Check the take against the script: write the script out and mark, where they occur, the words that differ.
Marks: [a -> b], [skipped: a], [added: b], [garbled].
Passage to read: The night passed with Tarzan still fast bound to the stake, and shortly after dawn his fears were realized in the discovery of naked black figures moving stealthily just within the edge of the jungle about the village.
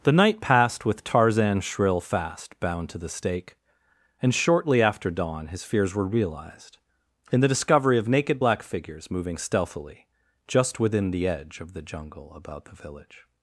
The night passed with Tarzan [still -> shrill] fast bound to the stake, and shortly after dawn his fears were realized in the discovery of naked black figures moving stealthily just within the edge of the jungle about the village.